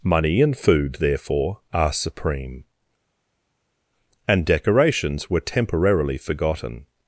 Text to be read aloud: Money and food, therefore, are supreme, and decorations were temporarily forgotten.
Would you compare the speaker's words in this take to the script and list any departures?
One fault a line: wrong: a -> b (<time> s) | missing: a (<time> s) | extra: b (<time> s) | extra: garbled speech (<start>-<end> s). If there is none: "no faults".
no faults